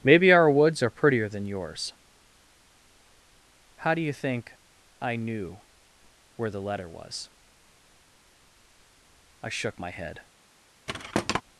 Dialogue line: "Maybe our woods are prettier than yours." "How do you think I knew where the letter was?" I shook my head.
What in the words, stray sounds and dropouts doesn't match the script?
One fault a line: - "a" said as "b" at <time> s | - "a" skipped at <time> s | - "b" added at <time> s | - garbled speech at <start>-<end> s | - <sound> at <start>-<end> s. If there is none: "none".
- thud at 10.9-11.4 s